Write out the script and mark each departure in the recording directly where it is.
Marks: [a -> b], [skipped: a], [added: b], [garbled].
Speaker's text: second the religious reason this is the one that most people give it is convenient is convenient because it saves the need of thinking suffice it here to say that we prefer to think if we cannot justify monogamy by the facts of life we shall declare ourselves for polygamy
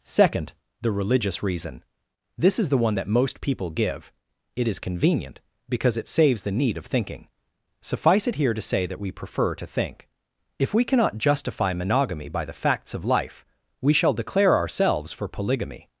second the religious reason this is the one that most people give it is convenient [skipped: is convenient] because it saves the need of thinking suffice it here to say that we prefer to think if we cannot justify monogamy by the facts of life we shall declare ourselves for polygamy